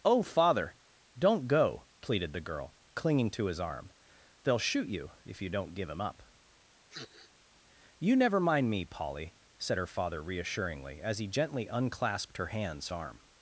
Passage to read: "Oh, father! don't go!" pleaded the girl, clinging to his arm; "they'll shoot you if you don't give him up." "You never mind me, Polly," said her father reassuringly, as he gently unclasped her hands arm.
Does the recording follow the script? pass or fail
pass